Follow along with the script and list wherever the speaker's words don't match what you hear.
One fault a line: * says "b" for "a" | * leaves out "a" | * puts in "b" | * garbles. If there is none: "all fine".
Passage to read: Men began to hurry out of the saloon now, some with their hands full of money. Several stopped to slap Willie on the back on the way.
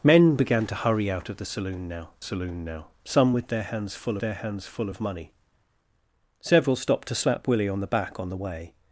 * puts in "saloon now"
* puts in "their hands full"